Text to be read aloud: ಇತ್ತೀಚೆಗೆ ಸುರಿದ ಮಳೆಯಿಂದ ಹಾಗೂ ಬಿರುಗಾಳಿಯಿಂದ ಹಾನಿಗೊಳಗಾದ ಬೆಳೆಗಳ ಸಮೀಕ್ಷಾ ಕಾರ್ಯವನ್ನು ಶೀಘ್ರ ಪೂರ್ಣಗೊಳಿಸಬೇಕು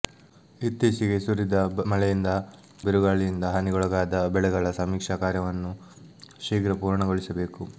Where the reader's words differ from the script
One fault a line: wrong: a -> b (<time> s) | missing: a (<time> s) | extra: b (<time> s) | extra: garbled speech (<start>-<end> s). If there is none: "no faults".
missing: ಹಾಗೂ (2.3 s)